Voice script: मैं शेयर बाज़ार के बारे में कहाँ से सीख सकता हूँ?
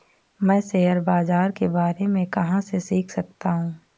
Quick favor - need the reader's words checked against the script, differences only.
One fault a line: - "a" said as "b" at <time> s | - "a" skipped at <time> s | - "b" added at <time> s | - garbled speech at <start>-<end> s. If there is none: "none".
none